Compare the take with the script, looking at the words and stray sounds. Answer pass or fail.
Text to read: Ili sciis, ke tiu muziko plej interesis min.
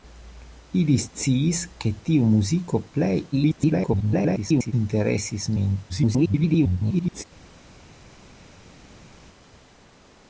fail